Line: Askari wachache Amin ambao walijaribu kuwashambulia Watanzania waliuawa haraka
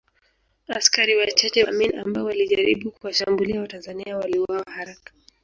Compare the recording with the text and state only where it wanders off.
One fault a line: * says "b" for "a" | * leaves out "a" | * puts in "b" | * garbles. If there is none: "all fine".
all fine